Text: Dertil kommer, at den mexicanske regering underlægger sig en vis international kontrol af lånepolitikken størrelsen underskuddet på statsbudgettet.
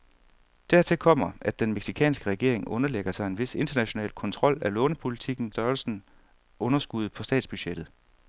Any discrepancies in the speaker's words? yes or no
no